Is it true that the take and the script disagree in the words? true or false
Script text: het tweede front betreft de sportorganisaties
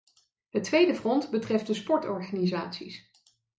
false